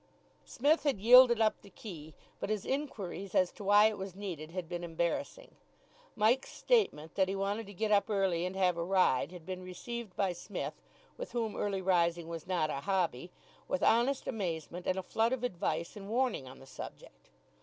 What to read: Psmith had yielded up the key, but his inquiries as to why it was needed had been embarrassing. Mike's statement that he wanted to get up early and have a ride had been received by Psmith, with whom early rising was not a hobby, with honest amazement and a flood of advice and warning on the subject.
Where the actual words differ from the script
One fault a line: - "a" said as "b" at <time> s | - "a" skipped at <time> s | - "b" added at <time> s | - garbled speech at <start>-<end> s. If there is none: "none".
none